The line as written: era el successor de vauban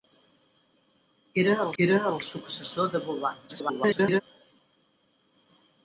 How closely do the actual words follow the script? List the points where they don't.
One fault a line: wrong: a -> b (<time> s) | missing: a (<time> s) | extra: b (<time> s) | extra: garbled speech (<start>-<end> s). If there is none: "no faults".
extra: era el (1.8 s)
extra: garbled speech (3.5-4.2 s)